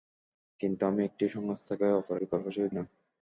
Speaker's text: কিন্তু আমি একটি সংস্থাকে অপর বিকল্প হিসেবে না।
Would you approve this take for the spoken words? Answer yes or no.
yes